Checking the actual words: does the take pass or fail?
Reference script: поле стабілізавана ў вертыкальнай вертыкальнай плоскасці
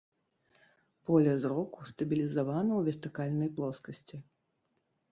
fail